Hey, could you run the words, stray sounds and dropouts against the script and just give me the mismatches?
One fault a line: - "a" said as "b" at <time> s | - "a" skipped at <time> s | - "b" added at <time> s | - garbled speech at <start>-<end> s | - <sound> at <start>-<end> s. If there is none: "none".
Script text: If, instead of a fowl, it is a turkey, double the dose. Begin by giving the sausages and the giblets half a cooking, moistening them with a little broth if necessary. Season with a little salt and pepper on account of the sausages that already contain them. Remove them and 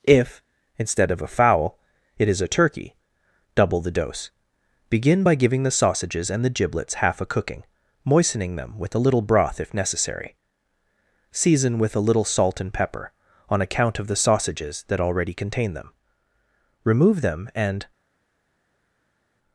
none